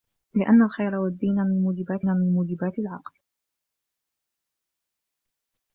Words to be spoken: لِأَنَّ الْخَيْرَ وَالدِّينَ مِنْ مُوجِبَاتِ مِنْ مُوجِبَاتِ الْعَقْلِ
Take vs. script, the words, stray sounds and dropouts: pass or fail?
pass